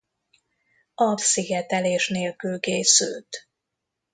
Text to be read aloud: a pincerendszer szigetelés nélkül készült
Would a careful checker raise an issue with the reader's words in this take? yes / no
yes